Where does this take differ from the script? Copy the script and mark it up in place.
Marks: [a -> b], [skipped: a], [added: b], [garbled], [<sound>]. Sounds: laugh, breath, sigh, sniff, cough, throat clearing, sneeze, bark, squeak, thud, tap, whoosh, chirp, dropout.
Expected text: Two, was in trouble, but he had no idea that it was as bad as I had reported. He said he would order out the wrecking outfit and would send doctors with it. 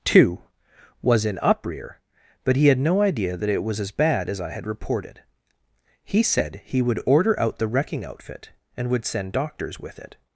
Two, was in [trouble, -> uprear] but he had no idea that it was as bad as I had reported. He said he would order out the wrecking outfit and would send doctors with it.